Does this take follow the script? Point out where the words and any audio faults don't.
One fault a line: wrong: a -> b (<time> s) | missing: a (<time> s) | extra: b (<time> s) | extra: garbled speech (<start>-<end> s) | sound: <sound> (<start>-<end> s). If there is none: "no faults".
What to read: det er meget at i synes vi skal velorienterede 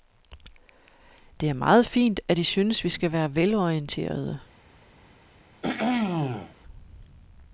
extra: fint (1.9 s)
extra: være (3.1 s)
sound: throat clearing (5.6-6.6 s)